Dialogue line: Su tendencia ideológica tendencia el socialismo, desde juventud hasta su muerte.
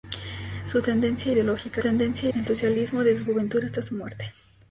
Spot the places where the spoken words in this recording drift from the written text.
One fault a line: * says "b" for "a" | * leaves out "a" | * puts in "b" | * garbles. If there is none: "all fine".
all fine